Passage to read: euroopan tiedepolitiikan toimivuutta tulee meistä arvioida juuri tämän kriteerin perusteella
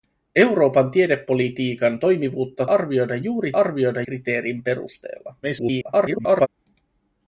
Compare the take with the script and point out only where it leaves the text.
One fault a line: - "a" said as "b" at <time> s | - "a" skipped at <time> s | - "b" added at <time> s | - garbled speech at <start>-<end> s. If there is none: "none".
- "tulee meistä" skipped at 2.6 s
- "tämän" said as "arvioida" at 3.5 s
- garbled speech at 5.4-6.5 s